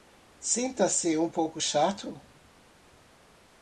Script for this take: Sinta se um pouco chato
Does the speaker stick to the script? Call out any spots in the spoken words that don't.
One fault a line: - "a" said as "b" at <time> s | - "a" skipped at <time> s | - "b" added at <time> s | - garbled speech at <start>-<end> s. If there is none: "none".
none